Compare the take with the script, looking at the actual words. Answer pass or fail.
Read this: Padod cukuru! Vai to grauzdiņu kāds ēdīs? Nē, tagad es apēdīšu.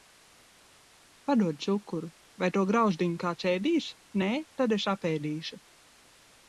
fail